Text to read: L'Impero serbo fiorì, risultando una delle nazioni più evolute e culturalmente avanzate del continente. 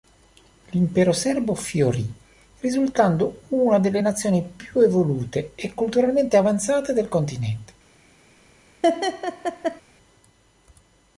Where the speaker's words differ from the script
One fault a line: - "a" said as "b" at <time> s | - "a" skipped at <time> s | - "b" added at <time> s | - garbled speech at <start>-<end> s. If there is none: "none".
none